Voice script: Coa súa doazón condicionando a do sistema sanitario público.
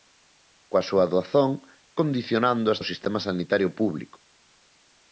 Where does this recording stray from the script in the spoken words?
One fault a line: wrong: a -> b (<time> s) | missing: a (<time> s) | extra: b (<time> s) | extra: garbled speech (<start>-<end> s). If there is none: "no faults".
no faults